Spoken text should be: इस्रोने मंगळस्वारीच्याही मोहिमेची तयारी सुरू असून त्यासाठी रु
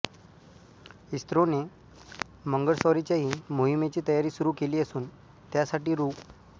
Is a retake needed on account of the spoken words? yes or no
yes